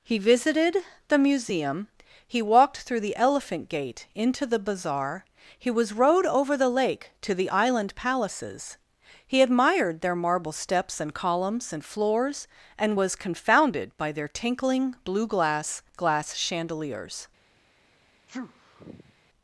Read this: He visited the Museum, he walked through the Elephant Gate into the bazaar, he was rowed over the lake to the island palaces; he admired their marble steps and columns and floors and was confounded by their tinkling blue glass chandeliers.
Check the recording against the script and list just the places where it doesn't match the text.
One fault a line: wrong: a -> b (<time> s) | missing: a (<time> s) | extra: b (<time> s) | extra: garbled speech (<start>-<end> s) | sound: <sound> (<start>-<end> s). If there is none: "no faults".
extra: glass (16.0 s)
sound: sneeze (18.3-19.1 s)